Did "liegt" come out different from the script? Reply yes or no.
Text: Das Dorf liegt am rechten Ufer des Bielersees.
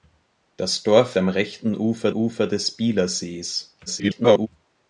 yes